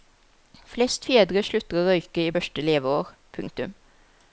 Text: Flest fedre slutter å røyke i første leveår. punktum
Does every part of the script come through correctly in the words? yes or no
yes